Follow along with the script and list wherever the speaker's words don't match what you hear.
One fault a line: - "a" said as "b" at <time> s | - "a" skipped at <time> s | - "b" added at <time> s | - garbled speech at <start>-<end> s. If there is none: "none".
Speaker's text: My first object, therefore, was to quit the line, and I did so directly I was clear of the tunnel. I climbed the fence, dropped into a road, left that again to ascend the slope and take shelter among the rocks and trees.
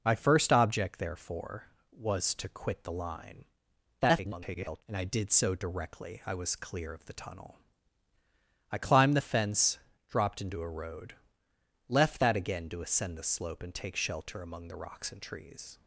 - garbled speech at 4.0-4.8 s